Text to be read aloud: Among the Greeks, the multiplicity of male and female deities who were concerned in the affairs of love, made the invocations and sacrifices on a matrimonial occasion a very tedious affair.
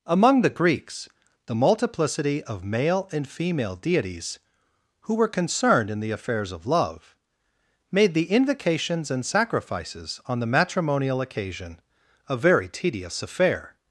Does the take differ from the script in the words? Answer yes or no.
yes